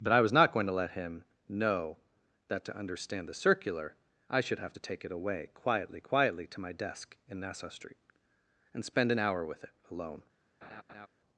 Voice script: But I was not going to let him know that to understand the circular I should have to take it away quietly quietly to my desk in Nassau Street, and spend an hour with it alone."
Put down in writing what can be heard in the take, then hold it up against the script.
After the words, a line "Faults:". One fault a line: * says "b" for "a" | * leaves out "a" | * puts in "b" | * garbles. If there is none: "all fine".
But I was not going to let him know that to understand the circular I should have to take it away quietly quietly to my desk in Nassau Street, and spend an hour with it alone."
Faults:
all fine